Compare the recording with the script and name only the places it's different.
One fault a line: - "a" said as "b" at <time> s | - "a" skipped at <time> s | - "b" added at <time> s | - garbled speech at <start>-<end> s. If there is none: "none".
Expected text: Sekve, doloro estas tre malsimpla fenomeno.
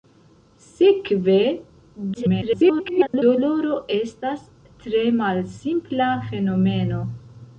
- garbled speech at 2.1-3.2 s